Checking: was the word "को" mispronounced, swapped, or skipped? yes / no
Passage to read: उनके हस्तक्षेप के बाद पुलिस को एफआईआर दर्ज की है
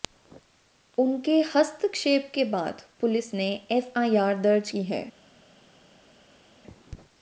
yes